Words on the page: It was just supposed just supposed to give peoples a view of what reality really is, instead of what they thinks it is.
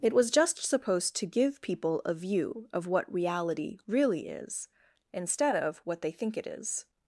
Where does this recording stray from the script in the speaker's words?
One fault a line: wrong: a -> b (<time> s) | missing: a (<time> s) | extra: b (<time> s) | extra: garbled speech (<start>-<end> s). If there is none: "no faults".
missing: just supposed (1.1 s)
wrong: peoples -> people (1.6 s)
wrong: thinks -> think (6.1 s)